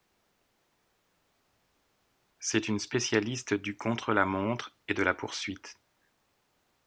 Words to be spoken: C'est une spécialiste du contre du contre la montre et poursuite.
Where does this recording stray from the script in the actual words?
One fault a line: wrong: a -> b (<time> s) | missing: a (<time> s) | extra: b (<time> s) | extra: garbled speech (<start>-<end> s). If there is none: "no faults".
missing: du contre (4.1 s)
extra: de la (4.9 s)